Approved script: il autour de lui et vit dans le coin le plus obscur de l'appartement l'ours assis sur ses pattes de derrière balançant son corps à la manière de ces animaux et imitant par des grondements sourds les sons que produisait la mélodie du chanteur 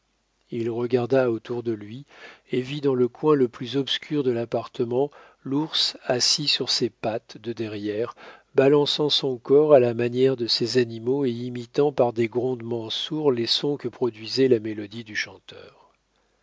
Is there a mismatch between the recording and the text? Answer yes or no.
yes